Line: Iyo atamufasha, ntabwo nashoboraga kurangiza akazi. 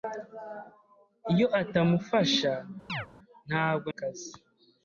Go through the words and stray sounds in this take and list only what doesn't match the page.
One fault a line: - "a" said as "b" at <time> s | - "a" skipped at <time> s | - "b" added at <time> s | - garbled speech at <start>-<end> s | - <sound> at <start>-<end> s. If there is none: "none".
- chirp at 2.9-3.1 s
- "nashoboraga kurangiza" skipped at 3.9 s